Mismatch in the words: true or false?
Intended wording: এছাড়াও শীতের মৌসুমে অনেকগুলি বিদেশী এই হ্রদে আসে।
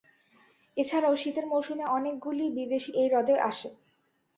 false